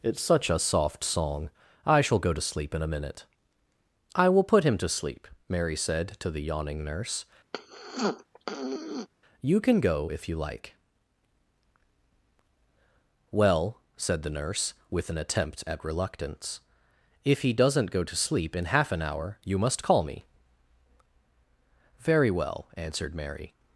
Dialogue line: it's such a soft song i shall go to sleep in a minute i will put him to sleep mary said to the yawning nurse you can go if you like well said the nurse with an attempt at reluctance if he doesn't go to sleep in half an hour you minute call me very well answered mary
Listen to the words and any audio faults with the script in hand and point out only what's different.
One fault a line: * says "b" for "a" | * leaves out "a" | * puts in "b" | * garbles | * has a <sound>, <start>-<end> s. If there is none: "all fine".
* has a throat clearing, 7.5-9.1 s
* says "must" for "minute"